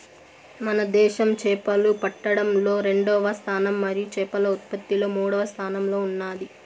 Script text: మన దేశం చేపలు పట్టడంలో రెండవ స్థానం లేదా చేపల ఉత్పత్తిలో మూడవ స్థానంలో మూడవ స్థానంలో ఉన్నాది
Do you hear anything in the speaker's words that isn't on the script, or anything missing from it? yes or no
yes